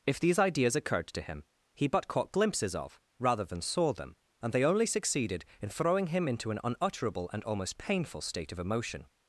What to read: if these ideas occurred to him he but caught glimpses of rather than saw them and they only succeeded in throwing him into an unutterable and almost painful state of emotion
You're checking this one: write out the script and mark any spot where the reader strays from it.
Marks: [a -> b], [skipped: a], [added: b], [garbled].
if these ideas occurred to him he but caught glimpses of rather than saw them and they only succeeded in throwing him into an unutterable and almost painful state of emotion